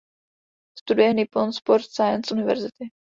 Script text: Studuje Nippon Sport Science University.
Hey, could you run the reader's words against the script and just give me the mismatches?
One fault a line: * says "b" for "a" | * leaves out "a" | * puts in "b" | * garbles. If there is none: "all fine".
all fine